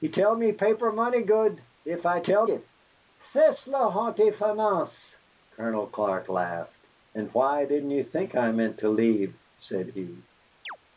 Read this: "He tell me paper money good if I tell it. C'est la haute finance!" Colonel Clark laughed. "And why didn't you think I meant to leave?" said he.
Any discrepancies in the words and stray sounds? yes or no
yes